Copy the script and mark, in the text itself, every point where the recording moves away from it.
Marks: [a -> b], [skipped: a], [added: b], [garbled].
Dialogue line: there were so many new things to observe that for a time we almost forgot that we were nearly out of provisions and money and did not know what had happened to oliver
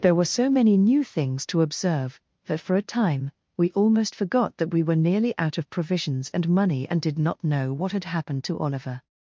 there were so many new things to observe that for a time we almost forgot that we were nearly out of provisions and money and did not know what had happened to oliver